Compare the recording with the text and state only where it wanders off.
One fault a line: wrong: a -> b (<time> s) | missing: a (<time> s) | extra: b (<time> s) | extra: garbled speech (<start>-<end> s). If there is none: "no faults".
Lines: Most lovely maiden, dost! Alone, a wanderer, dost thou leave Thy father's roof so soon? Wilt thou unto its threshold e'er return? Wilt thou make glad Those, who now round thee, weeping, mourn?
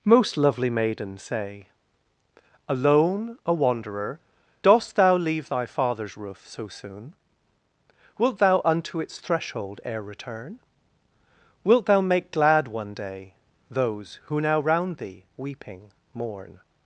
wrong: dost -> say (1.2 s)
extra: one day (12.7 s)